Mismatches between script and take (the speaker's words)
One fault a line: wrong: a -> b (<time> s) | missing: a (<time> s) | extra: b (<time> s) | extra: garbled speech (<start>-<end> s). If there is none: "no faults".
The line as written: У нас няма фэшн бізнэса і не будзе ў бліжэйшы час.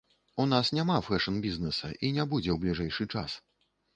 no faults